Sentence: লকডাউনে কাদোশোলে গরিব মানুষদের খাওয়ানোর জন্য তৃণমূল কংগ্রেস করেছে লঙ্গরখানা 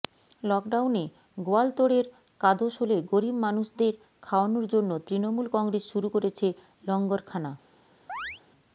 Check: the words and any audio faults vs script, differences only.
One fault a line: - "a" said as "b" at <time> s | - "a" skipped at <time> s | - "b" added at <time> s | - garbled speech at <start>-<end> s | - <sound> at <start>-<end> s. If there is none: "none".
- "গোয়ালতোড়ের" added at 1.4 s
- "শুরু" added at 5.9 s
- chirp at 8.1-8.4 s